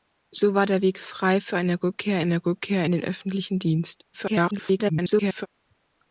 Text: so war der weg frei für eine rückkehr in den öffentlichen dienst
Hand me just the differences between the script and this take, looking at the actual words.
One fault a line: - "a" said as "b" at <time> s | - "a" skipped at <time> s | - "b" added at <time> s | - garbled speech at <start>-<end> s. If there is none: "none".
- "eine rückkehr" added at 2.2 s
- garbled speech at 4.1-5.5 s